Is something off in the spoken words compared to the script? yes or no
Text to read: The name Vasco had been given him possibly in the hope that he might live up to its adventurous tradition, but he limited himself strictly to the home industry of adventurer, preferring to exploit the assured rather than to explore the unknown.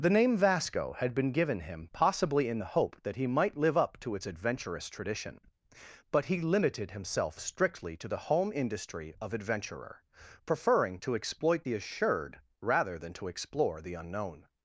no